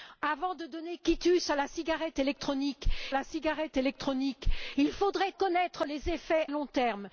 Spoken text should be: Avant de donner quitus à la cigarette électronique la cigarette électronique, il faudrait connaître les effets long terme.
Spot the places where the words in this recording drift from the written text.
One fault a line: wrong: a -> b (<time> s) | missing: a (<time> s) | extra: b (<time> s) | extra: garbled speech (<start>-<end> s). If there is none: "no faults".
no faults